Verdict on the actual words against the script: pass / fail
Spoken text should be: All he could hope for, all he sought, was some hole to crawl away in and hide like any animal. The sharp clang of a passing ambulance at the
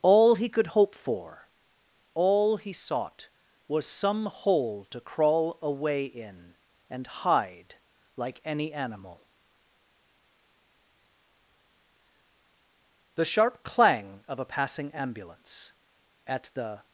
pass